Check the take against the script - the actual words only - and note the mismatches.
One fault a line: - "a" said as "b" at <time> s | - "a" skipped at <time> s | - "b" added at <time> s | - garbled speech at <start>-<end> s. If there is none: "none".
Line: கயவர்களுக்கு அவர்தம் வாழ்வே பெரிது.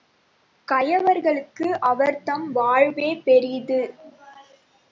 none